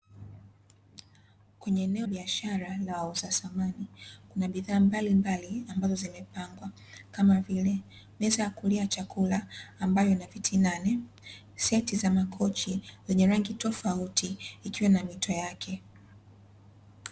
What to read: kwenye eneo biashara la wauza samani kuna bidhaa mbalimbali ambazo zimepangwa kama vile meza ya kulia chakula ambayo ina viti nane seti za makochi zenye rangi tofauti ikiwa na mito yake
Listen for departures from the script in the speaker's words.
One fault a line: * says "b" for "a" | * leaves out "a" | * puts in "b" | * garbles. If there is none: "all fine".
all fine